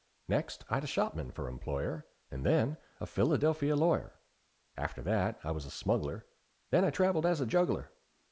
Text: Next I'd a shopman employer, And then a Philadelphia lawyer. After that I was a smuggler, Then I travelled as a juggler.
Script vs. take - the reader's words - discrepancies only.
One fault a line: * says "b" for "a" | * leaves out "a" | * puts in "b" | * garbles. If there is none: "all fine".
* puts in "for"